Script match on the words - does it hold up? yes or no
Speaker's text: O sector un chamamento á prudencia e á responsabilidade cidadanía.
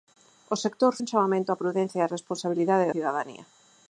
yes